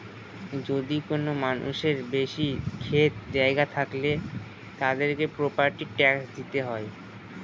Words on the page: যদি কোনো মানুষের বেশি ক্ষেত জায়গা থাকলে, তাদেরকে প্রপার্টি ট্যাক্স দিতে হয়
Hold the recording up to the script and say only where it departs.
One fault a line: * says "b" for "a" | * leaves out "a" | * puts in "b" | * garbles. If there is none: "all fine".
all fine